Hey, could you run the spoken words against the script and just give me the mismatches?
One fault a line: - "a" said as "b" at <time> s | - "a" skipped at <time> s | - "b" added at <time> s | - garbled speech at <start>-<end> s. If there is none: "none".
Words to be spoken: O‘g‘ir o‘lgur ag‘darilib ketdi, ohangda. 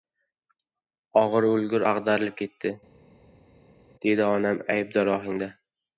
- "dedi onam aybdor" added at 4.1 s